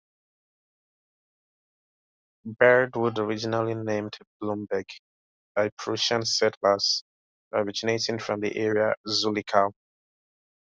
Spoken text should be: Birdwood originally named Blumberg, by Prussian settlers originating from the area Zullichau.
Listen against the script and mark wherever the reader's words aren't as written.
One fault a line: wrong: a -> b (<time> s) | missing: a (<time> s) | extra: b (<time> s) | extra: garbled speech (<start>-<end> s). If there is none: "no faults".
no faults